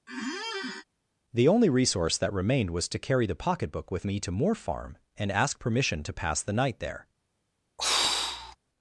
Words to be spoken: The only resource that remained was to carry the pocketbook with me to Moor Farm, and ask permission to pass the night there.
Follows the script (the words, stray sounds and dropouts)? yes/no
no